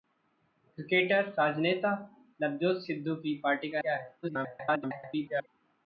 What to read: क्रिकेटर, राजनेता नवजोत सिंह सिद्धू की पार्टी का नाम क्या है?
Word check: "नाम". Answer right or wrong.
wrong